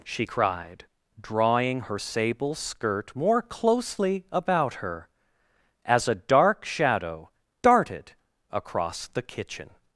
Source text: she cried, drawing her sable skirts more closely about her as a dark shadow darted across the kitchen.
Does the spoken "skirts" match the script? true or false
false